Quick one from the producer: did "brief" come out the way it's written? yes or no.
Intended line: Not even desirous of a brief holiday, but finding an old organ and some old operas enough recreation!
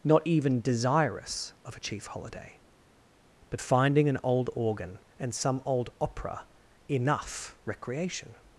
no